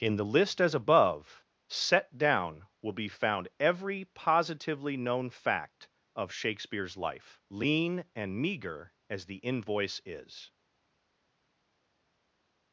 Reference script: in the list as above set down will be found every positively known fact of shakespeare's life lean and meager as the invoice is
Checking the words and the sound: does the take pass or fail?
pass